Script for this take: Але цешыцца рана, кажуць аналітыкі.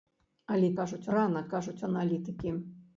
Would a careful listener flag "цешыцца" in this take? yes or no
yes